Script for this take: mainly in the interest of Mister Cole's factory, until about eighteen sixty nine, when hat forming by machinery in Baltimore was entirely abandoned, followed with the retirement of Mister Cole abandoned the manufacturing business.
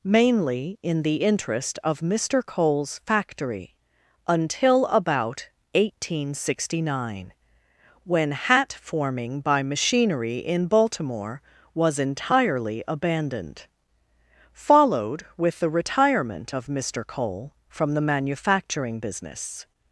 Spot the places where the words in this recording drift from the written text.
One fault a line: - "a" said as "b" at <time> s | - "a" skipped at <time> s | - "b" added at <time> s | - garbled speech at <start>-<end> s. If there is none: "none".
- "abandoned" said as "from" at 17.7 s